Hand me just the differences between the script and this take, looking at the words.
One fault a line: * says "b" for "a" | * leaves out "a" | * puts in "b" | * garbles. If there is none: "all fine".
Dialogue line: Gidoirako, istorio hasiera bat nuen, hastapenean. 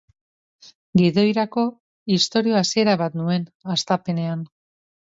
all fine